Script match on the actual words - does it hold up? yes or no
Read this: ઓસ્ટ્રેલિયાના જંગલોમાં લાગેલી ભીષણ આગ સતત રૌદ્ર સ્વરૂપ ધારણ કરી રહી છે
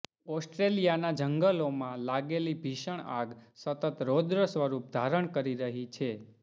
yes